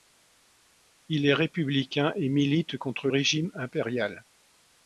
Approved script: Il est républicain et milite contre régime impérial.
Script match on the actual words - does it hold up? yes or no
yes